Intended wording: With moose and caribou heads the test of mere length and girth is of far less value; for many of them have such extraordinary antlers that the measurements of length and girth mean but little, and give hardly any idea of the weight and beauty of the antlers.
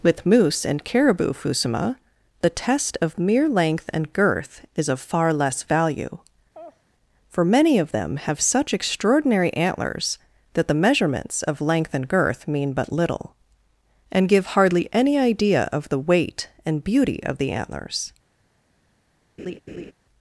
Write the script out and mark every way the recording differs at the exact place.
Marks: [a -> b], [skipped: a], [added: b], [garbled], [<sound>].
With moose and caribou [heads -> fusuma] the test of mere length and girth is of far less value; [laugh] for many of them have such extraordinary antlers that the measurements of length and girth mean but little, and give hardly any idea of the weight and beauty of the antlers. [laugh]